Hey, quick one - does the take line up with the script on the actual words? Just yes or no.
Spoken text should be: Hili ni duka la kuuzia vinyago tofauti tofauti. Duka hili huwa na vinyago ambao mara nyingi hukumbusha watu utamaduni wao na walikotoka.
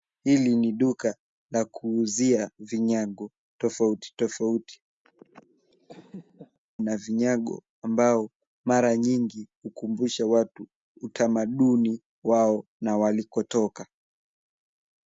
no